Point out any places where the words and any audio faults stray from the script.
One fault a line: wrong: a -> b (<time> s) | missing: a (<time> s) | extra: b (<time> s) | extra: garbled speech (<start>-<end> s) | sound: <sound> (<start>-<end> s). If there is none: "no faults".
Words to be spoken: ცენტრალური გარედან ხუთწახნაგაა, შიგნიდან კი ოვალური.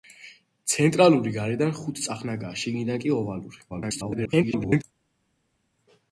extra: garbled speech (3.7-4.8 s)